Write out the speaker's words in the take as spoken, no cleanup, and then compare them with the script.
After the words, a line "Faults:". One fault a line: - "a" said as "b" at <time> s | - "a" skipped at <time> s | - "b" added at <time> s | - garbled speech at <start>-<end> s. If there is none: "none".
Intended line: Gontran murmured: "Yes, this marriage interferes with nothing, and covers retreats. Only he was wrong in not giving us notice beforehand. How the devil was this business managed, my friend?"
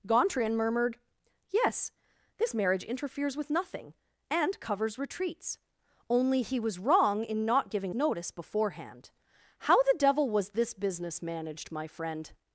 Gontran murmured: "Yes, this marriage interferes with nothing, and covers retreats. Only he was wrong in not giving notice beforehand. How the devil was this business managed, my friend?"
Faults:
- "us" skipped at 7.9 s